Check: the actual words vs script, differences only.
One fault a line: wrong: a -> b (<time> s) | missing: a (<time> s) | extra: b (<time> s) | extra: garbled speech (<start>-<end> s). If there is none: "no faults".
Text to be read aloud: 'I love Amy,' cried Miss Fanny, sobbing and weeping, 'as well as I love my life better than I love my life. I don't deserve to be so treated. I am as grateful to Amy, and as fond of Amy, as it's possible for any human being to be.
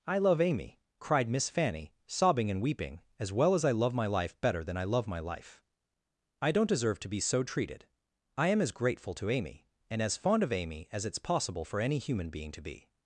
no faults